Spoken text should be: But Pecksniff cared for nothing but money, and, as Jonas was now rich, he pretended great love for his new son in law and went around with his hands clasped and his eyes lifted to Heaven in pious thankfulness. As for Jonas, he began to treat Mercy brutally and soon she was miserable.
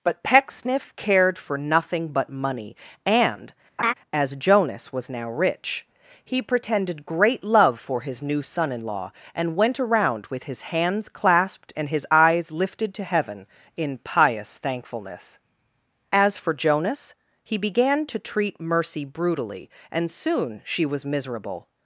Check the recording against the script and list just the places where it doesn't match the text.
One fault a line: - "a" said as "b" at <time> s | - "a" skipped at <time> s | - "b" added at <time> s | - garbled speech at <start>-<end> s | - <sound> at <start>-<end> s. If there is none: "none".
- laugh at 3.8-3.9 s